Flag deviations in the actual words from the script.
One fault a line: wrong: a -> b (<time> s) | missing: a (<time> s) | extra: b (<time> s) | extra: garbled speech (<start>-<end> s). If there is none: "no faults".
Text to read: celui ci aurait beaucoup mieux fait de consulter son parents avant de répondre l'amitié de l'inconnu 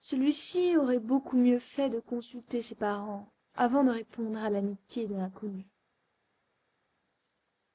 wrong: son -> ses (2.6 s)
extra: à (4.4 s)